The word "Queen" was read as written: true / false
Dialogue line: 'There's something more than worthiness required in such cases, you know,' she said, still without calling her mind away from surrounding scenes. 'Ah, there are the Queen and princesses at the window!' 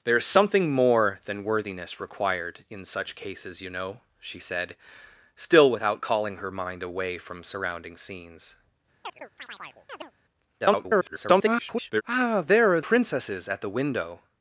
false